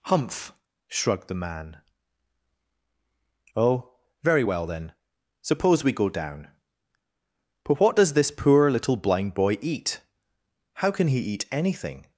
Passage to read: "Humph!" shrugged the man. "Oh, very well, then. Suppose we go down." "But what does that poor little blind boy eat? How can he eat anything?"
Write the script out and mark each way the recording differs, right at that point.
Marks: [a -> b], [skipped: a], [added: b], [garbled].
"Humph!" shrugged the man. "Oh, very well, then. Suppose we go down." "But what does [that -> this] poor little blind boy eat? How can he eat anything?"